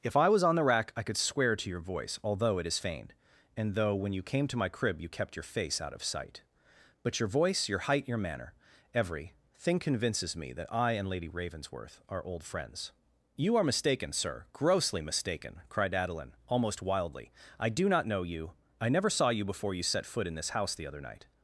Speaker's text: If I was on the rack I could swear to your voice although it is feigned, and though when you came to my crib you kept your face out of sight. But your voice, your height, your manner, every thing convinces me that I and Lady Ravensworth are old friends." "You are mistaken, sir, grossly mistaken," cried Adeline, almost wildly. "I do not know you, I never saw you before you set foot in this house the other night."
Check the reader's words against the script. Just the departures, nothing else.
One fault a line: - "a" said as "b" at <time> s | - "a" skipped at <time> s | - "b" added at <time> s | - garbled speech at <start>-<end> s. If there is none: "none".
none